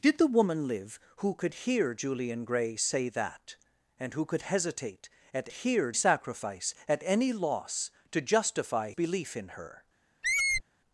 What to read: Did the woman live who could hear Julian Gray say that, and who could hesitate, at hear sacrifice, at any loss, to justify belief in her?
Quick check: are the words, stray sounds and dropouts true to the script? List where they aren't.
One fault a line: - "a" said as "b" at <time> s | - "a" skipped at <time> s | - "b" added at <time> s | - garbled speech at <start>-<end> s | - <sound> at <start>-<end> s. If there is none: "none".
- squeak at 10.2-10.6 s